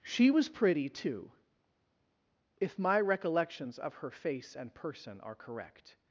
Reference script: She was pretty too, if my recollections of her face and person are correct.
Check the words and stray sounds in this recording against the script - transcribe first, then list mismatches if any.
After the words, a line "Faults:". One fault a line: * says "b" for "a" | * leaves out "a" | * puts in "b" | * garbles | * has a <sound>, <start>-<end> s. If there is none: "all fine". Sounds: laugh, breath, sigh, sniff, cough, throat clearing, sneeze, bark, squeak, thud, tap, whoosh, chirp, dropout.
She was pretty too, if my recollections of her face and person are correct.
Faults:
all fine